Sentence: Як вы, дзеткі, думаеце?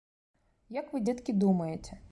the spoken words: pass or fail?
pass